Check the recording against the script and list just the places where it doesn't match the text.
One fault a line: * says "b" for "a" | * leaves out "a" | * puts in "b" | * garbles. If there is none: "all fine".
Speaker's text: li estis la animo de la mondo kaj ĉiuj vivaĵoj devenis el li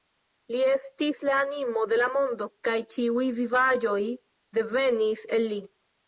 all fine